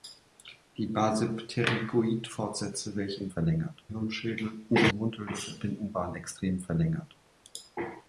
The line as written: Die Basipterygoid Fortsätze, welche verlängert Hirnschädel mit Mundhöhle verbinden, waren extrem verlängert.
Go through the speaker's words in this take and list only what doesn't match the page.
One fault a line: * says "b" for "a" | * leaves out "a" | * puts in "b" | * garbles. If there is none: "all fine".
all fine